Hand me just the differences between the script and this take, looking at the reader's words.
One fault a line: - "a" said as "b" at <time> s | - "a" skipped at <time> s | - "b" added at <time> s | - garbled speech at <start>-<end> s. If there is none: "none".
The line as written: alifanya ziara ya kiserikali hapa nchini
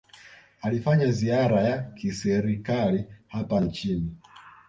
none